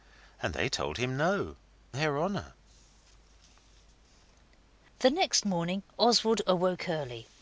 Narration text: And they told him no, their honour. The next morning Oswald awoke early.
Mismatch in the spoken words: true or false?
false